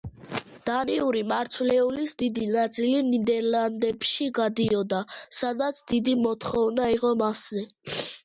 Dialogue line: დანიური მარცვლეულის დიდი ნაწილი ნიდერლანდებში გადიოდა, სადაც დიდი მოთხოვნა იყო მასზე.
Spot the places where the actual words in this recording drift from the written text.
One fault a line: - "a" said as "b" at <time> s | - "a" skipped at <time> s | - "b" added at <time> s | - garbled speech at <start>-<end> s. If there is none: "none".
none